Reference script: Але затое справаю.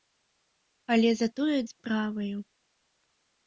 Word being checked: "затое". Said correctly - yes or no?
yes